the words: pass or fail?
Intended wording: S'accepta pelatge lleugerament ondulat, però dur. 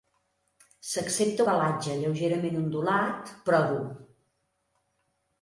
pass